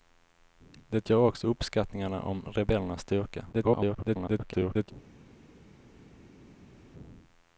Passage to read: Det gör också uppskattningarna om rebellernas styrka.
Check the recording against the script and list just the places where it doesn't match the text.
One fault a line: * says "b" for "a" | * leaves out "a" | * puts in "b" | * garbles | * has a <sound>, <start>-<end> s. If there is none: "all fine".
* garbles